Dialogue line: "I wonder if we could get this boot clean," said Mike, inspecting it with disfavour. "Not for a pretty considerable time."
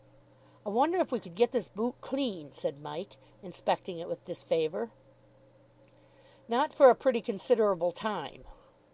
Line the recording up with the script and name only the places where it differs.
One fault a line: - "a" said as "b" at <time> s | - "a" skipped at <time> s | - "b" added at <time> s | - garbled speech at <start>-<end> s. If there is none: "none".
none